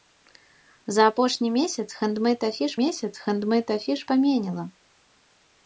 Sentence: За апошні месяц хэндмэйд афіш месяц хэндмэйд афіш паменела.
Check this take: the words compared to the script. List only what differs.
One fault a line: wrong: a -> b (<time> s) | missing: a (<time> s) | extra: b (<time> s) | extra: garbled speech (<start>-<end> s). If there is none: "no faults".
no faults